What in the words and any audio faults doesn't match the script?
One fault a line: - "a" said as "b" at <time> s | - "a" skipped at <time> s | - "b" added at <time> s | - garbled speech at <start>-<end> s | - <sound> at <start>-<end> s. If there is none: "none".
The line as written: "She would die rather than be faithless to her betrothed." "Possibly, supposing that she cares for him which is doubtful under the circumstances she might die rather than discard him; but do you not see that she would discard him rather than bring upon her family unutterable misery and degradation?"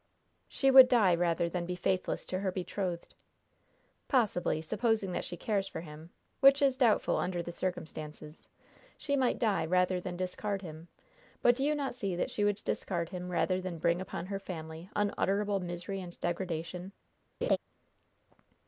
- laugh at 17.4-17.6 s